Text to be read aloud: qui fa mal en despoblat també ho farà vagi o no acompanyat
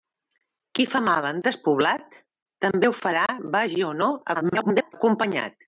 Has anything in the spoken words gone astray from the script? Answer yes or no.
yes